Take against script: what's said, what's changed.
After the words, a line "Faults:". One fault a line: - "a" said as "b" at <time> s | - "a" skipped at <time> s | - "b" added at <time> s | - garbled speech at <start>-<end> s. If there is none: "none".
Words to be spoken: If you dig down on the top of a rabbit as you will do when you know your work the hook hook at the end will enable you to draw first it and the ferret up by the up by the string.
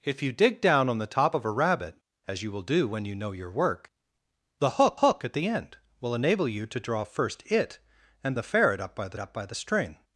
If you dig down on the top of a rabbit as you will do when you know your work the hook hook at the end will enable you to draw first it and the ferret up by the up by the string.
Faults:
none